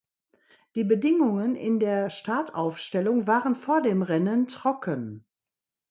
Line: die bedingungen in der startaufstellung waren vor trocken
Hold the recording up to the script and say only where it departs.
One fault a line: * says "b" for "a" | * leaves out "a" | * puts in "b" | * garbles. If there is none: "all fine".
* puts in "dem rennen"